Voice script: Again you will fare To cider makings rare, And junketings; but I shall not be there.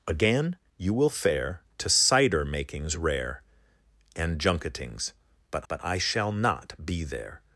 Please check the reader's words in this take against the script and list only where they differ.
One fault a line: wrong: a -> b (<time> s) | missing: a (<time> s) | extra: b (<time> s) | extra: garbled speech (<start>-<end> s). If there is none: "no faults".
extra: but (5.7 s)